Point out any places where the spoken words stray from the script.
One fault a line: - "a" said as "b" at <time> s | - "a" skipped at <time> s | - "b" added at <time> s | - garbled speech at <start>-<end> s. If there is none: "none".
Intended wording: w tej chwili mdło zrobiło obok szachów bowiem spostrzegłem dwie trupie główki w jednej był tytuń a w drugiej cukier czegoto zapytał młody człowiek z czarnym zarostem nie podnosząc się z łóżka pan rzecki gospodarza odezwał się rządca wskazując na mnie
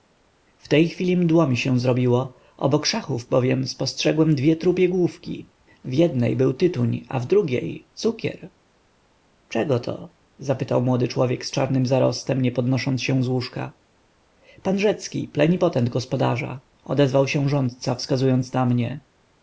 - "mi się" added at 1.5 s
- "plenipotent" added at 15.3 s